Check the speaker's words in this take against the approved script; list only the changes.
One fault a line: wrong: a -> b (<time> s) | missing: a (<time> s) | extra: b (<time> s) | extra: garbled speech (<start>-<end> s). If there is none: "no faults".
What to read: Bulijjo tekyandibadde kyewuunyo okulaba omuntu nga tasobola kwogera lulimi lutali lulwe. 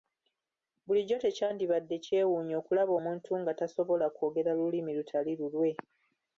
no faults